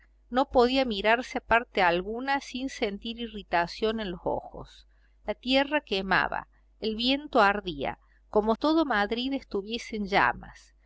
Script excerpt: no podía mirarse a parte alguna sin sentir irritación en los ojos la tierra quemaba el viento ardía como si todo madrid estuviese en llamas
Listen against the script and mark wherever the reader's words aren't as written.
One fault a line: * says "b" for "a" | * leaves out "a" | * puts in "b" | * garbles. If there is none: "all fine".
* leaves out "si"